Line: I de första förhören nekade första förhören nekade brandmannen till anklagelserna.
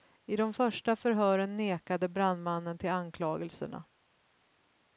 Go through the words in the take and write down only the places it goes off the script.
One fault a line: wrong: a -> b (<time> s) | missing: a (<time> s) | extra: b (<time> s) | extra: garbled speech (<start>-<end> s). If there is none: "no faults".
missing: första förhören nekade (2.1 s)